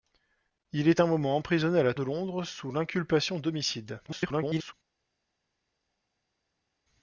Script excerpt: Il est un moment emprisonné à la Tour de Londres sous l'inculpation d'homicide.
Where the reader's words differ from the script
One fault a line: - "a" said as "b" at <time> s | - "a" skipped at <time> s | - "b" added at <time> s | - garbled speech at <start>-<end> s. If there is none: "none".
- "Tour" skipped at 1.9 s
- garbled speech at 4.1-4.7 s